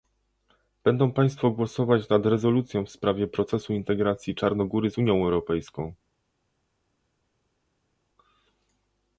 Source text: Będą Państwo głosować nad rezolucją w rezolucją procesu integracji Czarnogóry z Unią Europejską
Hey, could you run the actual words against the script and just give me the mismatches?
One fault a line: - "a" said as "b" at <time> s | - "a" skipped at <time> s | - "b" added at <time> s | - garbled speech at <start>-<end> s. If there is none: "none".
- "rezolucją" said as "sprawie" at 2.9 s